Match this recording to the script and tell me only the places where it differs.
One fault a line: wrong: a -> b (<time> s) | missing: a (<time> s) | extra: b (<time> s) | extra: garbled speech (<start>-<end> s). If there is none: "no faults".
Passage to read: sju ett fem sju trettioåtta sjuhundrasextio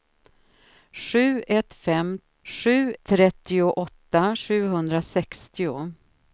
no faults